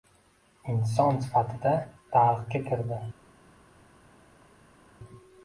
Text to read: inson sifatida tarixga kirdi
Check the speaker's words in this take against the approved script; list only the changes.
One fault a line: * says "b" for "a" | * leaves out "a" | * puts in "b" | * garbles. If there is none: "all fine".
all fine